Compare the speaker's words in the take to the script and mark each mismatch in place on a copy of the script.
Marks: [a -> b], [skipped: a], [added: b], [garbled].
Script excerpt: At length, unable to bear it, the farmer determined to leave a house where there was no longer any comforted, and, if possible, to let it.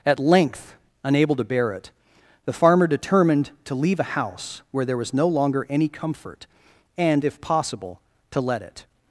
At length, unable to bear it, the farmer determined to leave a house where there was no longer any [comforted, -> comfort] and, if possible, to let it.